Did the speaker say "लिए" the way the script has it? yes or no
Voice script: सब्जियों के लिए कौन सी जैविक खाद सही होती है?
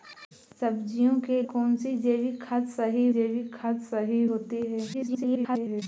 no